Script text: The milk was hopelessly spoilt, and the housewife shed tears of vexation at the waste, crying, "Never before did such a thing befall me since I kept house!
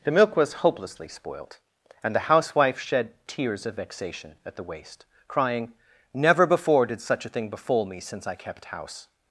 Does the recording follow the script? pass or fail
pass